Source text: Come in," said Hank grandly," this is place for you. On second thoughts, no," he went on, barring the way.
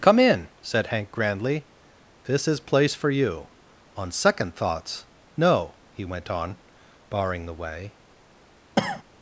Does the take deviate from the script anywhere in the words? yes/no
no